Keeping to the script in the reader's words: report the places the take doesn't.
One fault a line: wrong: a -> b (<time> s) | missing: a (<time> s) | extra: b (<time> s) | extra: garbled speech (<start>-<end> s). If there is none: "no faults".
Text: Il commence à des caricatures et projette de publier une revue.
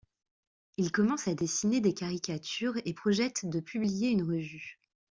extra: dessiner (1.3 s)